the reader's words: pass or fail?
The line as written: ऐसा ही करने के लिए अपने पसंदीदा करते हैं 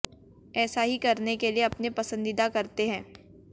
pass